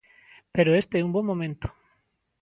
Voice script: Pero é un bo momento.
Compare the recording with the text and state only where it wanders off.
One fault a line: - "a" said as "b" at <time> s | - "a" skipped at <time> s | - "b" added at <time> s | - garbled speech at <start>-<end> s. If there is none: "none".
- "este" added at 0.8 s